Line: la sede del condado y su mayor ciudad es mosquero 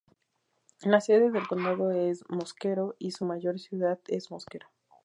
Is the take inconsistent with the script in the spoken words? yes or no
yes